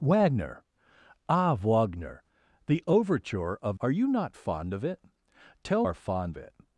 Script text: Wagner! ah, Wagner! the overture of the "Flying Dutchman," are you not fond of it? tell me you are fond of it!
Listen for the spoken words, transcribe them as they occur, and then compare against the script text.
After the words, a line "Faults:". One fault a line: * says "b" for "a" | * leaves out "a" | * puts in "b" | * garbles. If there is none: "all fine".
Wagner! ah, Wagner! the overture of," are you not fond of it? tell are fond it!
Faults:
* leaves out "the Flying Dutchman"
* leaves out "me you"
* leaves out "of"